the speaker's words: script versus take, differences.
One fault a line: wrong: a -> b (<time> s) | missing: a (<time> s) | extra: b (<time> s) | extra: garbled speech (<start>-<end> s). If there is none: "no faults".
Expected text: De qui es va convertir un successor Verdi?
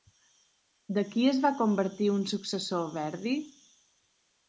no faults